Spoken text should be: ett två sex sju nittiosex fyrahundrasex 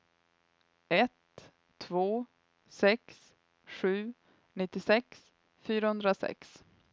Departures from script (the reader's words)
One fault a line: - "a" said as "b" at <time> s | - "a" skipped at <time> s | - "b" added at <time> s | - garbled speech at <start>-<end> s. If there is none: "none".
none